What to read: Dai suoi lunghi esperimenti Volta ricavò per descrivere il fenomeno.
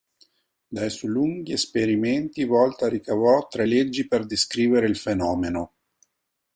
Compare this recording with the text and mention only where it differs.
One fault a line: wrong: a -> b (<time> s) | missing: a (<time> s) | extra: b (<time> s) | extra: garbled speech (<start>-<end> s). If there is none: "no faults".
extra: tre leggi (3.5 s)